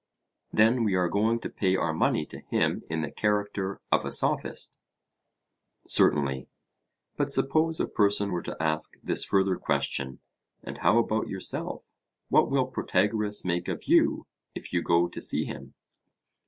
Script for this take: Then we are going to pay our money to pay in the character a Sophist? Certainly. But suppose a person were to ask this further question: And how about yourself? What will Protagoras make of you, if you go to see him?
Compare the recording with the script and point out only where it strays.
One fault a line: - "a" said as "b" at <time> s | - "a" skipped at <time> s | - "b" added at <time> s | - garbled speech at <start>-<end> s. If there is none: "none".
- "pay" said as "him" at 2.4 s
- "of" added at 3.9 s